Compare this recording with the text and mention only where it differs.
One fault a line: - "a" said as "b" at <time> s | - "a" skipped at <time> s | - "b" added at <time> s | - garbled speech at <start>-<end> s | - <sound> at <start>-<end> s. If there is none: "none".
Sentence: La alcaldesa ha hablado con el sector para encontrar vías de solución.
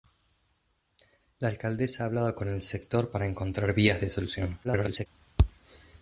- garbled speech at 4.6-5.1 s